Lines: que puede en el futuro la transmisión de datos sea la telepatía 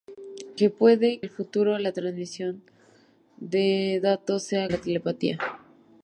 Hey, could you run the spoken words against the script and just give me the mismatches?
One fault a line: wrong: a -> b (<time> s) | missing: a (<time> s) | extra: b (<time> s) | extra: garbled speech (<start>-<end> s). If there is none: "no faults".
no faults